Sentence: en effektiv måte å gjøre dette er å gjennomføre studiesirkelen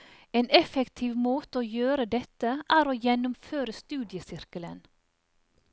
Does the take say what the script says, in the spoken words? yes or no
yes